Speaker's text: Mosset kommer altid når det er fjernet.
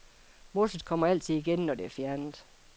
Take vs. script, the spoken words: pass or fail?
fail